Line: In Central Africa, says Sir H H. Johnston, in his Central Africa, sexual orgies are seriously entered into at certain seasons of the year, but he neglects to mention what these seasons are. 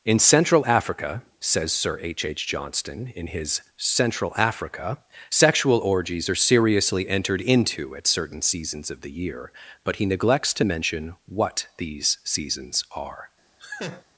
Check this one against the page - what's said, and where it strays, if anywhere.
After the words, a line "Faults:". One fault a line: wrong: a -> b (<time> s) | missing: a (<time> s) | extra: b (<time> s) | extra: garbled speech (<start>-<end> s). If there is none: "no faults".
In Central Africa, says Sir H H. Johnston, in his Central Africa, sexual orgies are seriously entered into at certain seasons of the year, but he neglects to mention what these seasons are.
Faults:
no faults